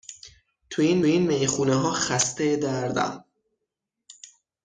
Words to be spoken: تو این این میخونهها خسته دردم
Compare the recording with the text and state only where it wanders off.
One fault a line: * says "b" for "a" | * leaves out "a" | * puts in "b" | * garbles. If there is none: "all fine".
all fine